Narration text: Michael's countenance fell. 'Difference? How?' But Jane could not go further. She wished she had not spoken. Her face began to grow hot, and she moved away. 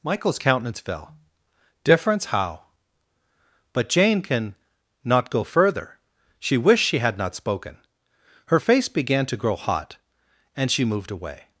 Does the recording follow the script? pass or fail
fail